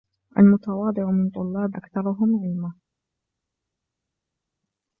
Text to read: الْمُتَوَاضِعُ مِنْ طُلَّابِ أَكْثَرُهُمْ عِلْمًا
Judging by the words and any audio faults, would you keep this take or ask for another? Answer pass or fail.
pass